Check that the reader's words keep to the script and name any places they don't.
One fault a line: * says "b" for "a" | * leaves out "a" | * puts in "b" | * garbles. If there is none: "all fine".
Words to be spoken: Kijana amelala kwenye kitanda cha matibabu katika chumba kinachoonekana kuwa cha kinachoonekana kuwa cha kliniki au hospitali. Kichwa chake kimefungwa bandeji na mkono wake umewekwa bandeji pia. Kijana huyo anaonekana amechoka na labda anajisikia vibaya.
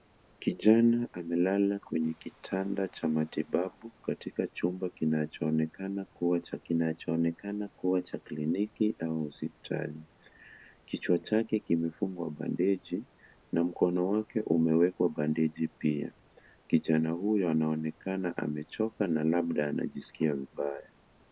all fine